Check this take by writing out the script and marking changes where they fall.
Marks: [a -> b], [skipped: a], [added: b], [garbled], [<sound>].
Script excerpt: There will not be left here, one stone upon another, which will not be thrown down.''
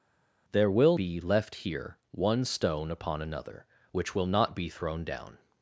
There will [skipped: not] be left here, one stone upon another, which will not be thrown down.''